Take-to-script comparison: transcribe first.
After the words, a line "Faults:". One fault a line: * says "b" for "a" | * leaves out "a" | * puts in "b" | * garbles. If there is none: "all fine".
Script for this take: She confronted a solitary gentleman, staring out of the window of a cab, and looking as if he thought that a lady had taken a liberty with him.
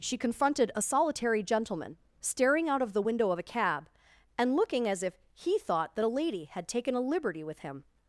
She confronted a solitary gentleman, staring out of the window of a cab, and looking as if he thought that a lady had taken a liberty with him.
Faults:
all fine